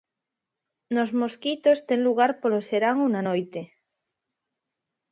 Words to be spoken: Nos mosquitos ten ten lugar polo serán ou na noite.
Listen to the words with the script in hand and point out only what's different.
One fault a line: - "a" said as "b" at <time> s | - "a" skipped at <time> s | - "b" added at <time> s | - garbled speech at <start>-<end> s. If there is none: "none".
- "ten" skipped at 2.0 s